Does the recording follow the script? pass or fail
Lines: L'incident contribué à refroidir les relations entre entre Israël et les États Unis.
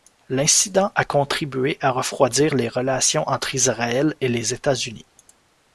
fail